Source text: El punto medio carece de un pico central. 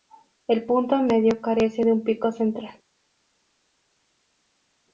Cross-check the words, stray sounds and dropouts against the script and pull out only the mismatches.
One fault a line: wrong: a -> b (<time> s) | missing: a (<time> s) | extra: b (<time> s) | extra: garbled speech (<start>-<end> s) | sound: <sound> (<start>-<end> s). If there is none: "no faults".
no faults